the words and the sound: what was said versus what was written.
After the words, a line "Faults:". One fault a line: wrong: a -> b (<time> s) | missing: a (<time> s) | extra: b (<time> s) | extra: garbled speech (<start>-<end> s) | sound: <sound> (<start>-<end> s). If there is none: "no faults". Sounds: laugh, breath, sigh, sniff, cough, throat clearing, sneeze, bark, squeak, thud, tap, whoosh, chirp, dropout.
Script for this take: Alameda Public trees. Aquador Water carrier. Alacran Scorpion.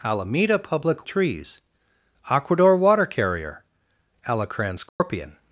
Alameda Public trees. Aquador Water carrier. Alacran Scorpion.
Faults:
sound: dropout (4.9-5.0 s)